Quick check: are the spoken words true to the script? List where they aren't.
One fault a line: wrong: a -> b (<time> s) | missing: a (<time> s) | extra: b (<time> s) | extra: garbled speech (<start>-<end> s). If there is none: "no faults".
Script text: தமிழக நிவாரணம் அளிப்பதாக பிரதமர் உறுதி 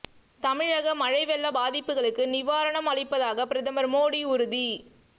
extra: மழை வெள்ள பாதிப்புகளுக்கு (0.9 s)
extra: மோடி (3.9 s)